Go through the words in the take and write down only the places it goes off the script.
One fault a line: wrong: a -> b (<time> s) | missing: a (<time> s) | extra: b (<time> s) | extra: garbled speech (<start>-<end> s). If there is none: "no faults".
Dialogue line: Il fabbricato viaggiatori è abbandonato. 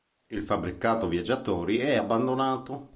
no faults